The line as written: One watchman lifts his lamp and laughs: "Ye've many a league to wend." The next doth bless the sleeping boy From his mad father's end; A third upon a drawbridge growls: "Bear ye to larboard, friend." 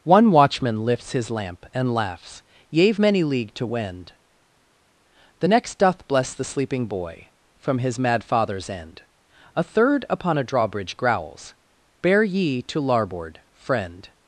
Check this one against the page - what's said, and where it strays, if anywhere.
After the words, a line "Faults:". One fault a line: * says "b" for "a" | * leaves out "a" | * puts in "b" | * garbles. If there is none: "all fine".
One watchman lifts his lamp and laughs: "Ye've many league to wend." The next doth bless the sleeping boy From his mad father's end; A third upon a drawbridge growls: "Bear ye to larboard, friend."
Faults:
* leaves out "a"